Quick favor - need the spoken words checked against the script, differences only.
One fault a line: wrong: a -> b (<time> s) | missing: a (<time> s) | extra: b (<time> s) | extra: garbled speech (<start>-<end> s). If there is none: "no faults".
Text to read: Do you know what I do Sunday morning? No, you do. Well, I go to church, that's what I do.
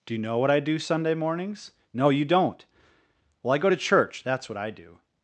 wrong: morning -> mornings (1.1 s)
wrong: do -> don't (2.2 s)